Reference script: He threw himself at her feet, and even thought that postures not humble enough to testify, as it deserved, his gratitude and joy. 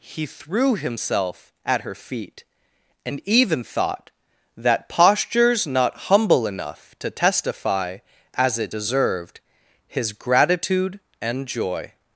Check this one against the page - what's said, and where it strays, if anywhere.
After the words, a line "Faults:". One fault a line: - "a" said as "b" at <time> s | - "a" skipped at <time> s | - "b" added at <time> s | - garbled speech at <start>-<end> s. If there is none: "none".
He threw himself at her feet, and even thought that postures not humble enough to testify, as it deserved, his gratitude and joy.
Faults:
none